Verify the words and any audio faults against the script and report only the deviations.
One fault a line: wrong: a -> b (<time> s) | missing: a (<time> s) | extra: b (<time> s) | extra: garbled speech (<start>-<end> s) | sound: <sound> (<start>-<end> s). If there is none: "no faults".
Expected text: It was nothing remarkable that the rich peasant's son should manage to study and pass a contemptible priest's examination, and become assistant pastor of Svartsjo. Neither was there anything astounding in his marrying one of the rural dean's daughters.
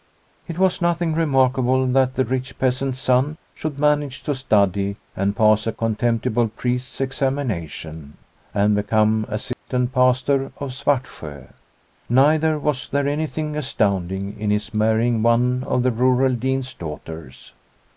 sound: dropout (9.5-9.7 s)